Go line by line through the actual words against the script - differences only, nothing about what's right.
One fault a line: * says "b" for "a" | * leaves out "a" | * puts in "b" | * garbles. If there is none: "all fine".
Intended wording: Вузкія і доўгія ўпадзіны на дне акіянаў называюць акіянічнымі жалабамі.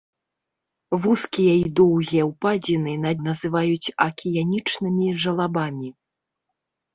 * leaves out "дне акіянаў"